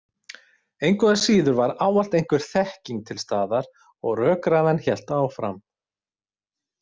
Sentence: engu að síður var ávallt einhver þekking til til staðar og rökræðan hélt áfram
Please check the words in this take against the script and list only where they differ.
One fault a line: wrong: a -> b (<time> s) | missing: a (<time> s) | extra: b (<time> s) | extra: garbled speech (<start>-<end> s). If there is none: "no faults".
missing: til (3.2 s)